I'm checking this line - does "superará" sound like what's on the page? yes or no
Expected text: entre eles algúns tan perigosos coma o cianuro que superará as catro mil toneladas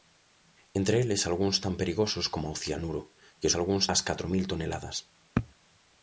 no